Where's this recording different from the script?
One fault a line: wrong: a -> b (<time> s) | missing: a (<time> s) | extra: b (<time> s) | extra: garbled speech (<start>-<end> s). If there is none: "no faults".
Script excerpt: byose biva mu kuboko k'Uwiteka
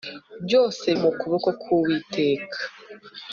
missing: biva (0.8 s)